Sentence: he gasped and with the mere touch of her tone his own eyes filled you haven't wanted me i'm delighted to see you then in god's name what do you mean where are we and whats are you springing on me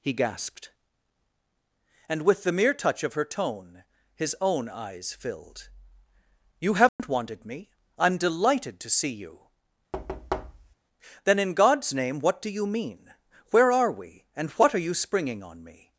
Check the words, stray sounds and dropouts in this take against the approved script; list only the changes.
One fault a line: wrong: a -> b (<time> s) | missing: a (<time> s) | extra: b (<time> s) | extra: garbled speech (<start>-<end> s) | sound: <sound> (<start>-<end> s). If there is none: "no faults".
sound: dropout (6.9-7.0 s)
sound: thud (9.9-10.8 s)
wrong: whats -> what (14.5 s)